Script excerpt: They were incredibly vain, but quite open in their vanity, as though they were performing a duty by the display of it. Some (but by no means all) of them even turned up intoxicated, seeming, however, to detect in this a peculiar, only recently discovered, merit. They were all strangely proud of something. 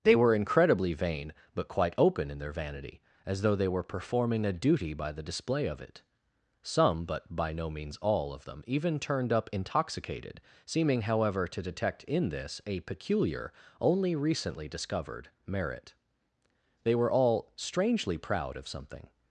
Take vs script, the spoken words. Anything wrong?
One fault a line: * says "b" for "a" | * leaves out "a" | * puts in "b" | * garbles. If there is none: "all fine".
all fine